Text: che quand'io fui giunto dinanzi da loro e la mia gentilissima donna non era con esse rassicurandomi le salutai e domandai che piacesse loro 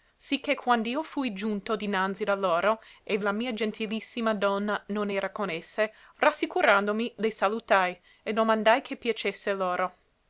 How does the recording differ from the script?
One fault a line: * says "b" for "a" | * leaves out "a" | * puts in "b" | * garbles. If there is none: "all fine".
all fine